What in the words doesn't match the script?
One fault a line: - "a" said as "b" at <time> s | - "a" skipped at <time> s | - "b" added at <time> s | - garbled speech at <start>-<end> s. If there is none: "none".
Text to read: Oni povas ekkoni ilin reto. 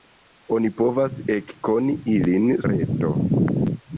none